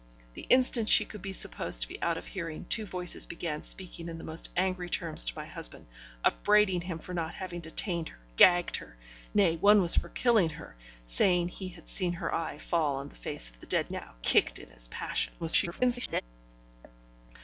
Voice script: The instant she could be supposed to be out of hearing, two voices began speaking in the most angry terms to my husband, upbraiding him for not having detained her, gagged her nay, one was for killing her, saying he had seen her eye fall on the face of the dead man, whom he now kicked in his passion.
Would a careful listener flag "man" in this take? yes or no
yes